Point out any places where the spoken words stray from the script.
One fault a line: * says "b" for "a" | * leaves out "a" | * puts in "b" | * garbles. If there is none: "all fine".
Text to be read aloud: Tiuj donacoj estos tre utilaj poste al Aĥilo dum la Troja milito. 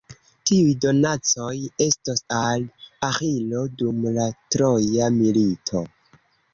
* leaves out "tre utilaj poste"